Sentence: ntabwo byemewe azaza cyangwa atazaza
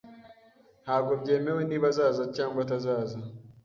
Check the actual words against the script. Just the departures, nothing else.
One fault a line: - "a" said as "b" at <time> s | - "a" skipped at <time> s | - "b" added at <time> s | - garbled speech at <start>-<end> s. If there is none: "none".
- "niba" added at 1.7 s